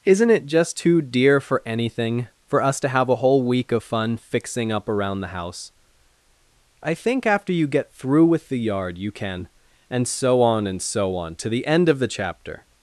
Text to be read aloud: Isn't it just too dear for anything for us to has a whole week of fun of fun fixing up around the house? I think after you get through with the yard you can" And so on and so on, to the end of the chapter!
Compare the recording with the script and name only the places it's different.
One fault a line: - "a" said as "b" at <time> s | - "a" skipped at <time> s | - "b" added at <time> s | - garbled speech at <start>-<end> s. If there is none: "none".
- "has" said as "have" at 2.9 s
- "of fun" skipped at 4.1 s